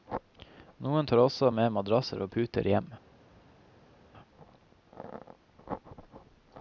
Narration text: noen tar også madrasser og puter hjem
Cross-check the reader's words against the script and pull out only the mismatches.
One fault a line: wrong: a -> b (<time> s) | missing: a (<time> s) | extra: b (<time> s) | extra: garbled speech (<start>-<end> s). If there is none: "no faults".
extra: med (1.5 s)